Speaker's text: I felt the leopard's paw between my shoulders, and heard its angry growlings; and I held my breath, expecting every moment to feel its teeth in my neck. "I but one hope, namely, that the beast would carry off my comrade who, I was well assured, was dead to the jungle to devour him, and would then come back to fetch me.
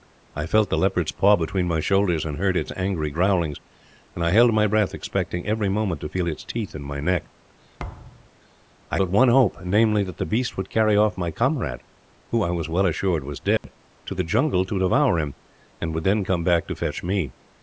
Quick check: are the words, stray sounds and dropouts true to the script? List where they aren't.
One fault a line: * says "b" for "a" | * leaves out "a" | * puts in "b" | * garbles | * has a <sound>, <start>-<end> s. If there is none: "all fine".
* has a thud, 7.8-8.3 s
* has a dropout, 13.6-13.6 s